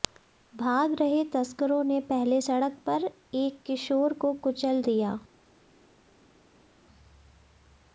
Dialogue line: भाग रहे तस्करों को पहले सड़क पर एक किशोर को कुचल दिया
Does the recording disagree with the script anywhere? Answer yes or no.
yes